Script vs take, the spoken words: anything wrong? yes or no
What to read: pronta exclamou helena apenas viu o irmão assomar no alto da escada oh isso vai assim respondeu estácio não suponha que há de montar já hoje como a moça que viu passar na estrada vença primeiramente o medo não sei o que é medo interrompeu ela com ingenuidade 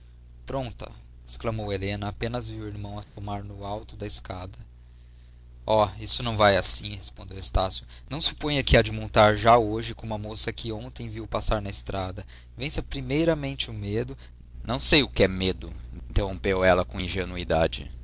yes